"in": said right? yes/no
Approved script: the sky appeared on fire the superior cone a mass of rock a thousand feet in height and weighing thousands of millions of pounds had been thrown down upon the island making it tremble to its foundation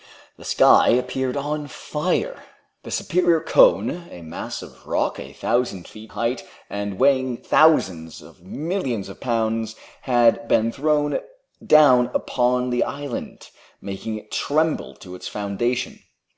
no